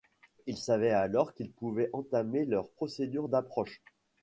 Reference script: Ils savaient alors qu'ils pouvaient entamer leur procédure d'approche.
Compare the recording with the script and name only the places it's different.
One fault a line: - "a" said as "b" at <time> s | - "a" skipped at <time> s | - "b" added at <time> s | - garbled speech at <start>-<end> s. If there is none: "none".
none